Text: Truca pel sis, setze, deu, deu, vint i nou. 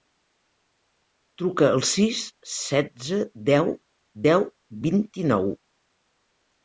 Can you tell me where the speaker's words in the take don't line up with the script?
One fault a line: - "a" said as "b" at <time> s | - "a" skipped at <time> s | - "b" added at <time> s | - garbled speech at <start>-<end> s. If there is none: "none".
- "pel" said as "al" at 1.7 s